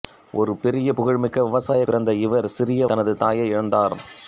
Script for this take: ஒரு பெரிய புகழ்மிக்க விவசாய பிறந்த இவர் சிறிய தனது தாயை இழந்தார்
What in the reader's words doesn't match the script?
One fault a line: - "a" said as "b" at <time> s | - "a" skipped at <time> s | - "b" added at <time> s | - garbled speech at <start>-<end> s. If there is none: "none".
none